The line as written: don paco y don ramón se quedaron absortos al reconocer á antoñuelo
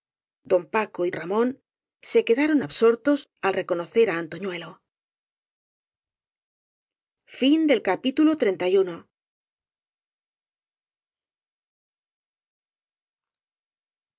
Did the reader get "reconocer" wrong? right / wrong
right